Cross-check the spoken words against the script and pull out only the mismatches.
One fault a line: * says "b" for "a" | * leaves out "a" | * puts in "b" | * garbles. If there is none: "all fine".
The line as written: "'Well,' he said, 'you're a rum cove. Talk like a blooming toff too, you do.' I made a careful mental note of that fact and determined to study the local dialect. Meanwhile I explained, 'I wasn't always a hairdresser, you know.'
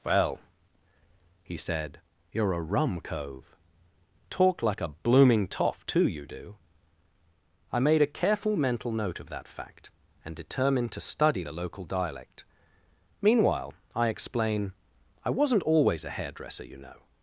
* says "explain" for "explained"